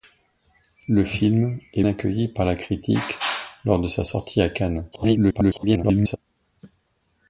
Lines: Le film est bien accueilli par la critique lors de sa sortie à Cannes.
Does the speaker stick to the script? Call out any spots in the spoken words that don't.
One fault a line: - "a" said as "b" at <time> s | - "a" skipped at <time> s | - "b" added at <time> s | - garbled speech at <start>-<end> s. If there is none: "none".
- "bien" skipped at 1.8 s
- garbled speech at 4.9-6.2 s